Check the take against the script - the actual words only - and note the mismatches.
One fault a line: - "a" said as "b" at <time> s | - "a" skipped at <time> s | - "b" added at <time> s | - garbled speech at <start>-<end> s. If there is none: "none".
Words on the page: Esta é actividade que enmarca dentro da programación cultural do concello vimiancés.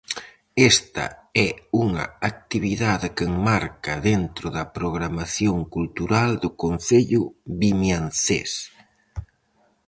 - "unha" added at 1.9 s